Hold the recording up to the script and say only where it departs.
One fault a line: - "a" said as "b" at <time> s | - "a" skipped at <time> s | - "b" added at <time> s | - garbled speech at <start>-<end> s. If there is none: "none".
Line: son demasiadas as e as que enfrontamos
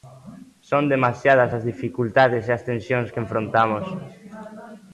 - "dificultades" added at 1.7 s
- "tensións" added at 2.7 s